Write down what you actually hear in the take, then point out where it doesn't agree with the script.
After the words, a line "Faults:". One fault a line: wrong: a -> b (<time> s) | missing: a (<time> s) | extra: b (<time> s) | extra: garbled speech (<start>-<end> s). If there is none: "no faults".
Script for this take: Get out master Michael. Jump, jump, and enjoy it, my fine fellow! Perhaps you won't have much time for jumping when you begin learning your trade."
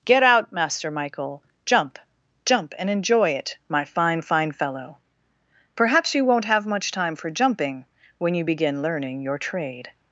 Get out master Michael. Jump, jump, and enjoy it, my fine fine fellow! Perhaps you won't have much time for jumping when you begin learning your trade."
Faults:
extra: fine (4.2 s)